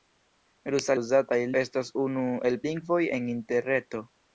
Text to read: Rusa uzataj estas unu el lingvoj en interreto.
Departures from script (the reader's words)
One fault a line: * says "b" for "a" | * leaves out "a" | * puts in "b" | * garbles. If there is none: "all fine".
all fine